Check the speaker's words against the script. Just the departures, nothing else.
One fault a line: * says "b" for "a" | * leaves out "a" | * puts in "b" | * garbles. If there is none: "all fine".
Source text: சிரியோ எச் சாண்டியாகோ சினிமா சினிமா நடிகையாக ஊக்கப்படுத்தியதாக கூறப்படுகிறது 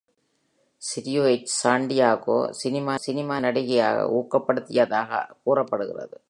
all fine